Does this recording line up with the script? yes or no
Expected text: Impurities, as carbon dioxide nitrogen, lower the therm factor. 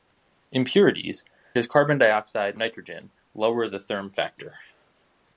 yes